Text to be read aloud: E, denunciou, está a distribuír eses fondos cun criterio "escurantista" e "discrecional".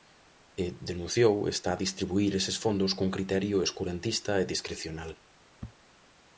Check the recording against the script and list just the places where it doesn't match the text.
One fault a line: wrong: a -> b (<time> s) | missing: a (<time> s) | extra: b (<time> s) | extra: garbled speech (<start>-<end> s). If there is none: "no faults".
no faults